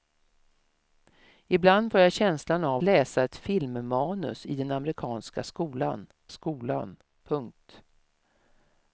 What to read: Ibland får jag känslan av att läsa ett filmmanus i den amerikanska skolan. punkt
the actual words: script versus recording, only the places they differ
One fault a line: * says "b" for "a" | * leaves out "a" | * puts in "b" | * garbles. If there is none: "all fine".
* leaves out "att"
* puts in "skolan"